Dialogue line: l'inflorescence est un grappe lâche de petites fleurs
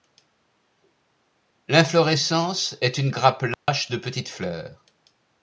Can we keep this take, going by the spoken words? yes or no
no